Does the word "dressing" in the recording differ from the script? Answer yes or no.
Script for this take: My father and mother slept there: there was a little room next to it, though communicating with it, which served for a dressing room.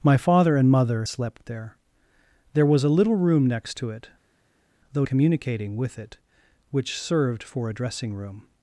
no